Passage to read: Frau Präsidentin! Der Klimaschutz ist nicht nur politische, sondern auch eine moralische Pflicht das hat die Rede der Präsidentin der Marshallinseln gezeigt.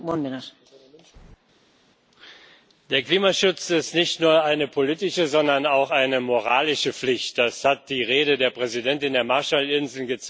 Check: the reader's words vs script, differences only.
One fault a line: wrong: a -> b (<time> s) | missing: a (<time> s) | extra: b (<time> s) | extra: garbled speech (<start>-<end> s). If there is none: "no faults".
extra: eine (4.4 s)